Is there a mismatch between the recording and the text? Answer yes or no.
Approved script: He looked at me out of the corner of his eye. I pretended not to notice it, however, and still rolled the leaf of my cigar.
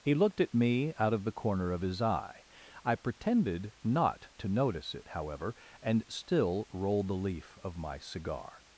no